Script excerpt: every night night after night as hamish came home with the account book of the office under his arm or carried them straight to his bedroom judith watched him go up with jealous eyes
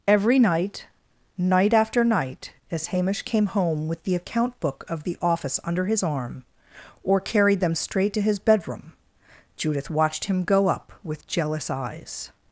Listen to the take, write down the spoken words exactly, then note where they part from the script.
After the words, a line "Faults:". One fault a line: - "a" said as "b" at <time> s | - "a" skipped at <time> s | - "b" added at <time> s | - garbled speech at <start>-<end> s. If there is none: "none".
every night night after night as hamish came home with the account book of the office under his arm or carried them straight to his bedroom judith watched him go up with jealous eyes
Faults:
none